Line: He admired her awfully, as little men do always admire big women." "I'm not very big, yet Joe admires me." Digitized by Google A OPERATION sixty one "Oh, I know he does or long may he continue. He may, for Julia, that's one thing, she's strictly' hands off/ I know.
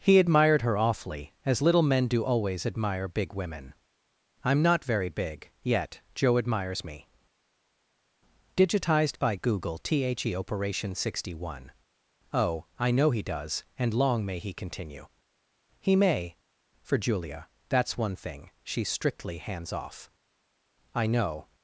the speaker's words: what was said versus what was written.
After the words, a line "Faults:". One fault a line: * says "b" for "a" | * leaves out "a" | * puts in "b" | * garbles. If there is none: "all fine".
He admired her awfully, as little men do always admire big women." "I'm not very big, yet Joe admires me." Digitized by Google THE OPERATION sixty one "Oh, I know he does and long may he continue. He may, for Julia, that's one thing, she's strictly' hands off/ I know.
Faults:
* says "THE" for "A"
* says "and" for "or"